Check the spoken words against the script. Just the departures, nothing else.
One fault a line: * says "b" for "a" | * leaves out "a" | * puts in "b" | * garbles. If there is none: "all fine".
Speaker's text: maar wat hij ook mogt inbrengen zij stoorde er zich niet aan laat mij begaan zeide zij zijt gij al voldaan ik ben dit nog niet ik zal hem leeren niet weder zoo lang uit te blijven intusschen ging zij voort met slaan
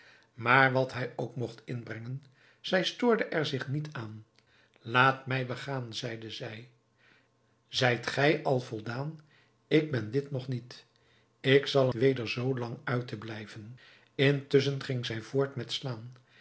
* leaves out "hem leeren niet"